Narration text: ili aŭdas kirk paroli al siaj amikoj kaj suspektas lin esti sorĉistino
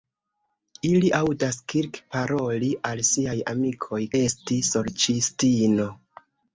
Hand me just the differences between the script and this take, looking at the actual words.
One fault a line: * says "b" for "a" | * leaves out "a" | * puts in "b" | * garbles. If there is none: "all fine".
* leaves out "kaj suspektas lin"